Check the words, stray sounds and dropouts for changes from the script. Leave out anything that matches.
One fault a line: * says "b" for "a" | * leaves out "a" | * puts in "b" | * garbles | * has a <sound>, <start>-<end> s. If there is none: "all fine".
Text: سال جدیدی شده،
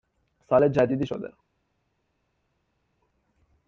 all fine